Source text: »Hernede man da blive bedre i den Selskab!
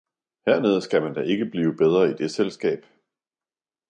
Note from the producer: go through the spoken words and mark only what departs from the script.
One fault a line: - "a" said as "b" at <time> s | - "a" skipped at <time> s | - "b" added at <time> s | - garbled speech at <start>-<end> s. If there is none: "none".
- "skal" added at 0.8 s
- "ikke" added at 1.2 s
- "den" said as "det" at 2.1 s